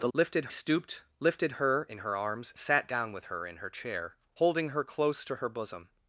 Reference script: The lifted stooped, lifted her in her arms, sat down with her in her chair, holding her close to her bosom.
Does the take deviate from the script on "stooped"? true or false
false